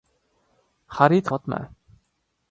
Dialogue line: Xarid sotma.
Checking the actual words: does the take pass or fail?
pass